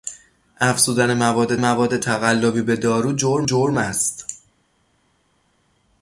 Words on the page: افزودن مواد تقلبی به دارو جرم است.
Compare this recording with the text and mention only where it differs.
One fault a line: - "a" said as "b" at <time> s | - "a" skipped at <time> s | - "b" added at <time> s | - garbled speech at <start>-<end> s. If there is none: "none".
- "مواد" added at 1.6 s
- "جرم" added at 3.4 s